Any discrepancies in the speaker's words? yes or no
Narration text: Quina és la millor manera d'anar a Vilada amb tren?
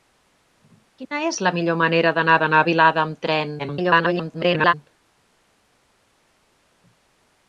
yes